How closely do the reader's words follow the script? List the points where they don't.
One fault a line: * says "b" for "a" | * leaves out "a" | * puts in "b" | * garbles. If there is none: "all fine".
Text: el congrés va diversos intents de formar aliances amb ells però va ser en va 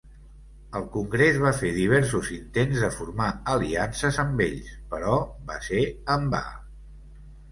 * puts in "fer"